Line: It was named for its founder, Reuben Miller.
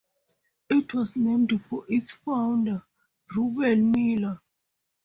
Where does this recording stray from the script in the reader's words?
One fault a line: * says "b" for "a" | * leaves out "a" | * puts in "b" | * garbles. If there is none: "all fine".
all fine